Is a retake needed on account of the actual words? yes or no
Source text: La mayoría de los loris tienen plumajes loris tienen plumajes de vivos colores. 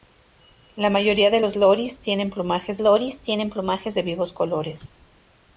no